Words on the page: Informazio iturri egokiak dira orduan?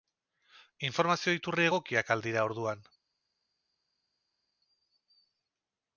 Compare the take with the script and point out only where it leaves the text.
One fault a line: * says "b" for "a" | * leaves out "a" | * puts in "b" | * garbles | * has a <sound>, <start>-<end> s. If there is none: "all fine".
* puts in "al"